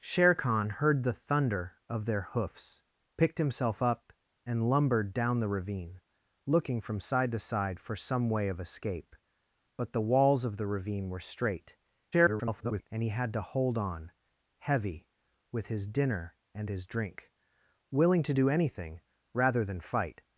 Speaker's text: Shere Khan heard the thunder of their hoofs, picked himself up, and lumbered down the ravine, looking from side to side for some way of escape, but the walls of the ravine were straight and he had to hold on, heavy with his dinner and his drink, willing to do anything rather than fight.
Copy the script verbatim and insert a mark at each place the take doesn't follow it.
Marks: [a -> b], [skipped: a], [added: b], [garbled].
Shere Khan heard the thunder of their hoofs, picked himself up, and lumbered down the ravine, looking from side to side for some way of escape, but the walls of the ravine were straight [garbled] and he had to hold on, heavy with his dinner and his drink, willing to do anything rather than fight.